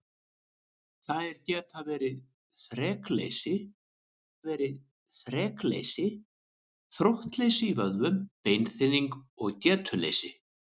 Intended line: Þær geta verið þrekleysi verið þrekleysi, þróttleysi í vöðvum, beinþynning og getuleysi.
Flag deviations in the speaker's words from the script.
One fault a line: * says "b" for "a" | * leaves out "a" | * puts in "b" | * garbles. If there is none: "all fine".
all fine